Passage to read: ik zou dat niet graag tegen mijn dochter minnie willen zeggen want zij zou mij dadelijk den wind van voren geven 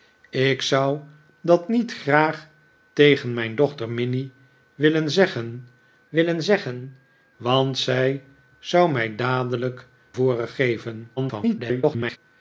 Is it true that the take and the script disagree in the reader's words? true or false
true